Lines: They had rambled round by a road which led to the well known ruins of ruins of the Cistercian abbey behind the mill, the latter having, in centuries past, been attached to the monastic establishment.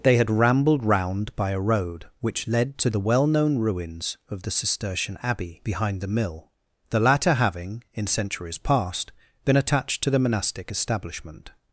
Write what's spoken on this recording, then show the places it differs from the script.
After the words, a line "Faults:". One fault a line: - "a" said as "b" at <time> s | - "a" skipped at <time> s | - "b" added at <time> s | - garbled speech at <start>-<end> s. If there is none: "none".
They had rambled round by a road which led to the well known ruins of the Cistercian abbey behind the mill, the latter having, in centuries past, been attached to the monastic establishment.
Faults:
- "ruins of" skipped at 4.4 s